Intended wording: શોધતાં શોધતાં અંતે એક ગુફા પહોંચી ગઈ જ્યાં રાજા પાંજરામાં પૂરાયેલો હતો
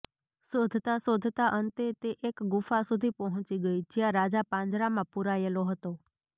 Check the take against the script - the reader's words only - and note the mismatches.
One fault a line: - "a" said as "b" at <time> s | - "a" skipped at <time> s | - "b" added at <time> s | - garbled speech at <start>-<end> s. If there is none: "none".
- "તે" added at 2.0 s
- "સુધી" added at 2.9 s